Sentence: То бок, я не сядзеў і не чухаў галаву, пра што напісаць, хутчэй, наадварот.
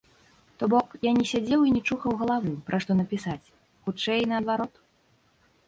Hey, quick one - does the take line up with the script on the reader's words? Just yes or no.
yes